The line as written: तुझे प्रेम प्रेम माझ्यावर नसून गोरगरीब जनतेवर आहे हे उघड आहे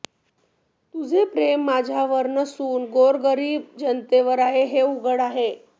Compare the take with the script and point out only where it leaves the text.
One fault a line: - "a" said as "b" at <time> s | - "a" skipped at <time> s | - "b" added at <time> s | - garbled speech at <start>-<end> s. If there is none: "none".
- "प्रेम" skipped at 1.6 s